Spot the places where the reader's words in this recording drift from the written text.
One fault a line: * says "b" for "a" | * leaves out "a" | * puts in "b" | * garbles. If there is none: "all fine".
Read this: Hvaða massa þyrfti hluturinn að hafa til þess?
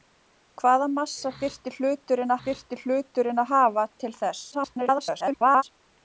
* puts in "þyrfti hluturinn"
* garbles